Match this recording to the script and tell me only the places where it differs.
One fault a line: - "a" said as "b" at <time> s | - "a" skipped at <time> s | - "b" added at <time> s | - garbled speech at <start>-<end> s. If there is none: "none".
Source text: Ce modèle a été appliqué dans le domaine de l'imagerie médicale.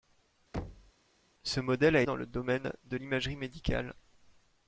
- "été appliqué" skipped at 2.0 s